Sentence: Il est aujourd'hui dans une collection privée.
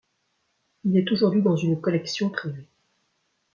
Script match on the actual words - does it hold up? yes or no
yes